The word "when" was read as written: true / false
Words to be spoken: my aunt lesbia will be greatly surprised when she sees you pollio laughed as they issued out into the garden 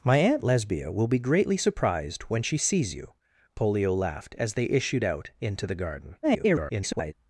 true